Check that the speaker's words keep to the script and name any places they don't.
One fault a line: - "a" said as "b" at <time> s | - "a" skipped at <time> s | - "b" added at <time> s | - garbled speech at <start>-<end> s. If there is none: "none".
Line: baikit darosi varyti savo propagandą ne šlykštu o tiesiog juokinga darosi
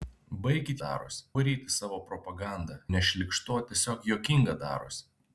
none